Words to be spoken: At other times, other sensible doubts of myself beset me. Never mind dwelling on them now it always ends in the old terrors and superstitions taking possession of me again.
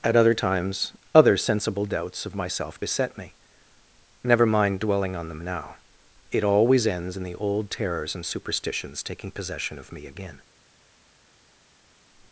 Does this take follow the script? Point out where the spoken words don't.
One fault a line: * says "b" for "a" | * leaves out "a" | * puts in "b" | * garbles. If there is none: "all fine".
all fine